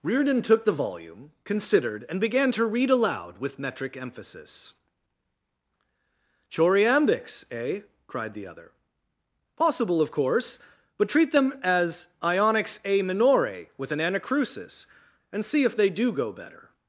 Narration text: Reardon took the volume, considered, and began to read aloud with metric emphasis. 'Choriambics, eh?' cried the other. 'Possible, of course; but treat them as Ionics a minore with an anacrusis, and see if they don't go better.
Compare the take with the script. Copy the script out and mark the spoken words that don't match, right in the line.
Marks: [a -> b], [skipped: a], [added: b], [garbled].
Reardon took the volume, considered, and began to read aloud with metric emphasis. 'Choriambics, eh?' cried the other. 'Possible, of course; but treat them as Ionics a minore with an anacrusis, and see if they [don't -> do] go better.